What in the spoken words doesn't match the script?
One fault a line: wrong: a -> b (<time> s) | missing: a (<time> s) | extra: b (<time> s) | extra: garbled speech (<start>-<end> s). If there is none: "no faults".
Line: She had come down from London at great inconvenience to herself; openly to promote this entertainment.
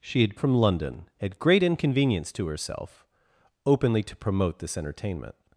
missing: come down (0.3 s)